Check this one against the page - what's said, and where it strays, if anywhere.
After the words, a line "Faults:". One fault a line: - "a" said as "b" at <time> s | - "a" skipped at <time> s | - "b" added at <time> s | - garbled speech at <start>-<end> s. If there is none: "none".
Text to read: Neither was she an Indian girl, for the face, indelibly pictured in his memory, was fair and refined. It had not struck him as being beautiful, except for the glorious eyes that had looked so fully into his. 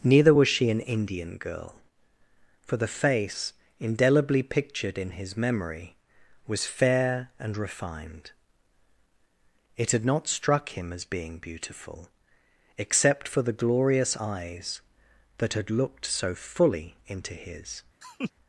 Neither was she an Indian girl, for the face, indelibly pictured in his memory, was fair and refined. It had not struck him as being beautiful, except for the glorious eyes that had looked so fully into his.
Faults:
none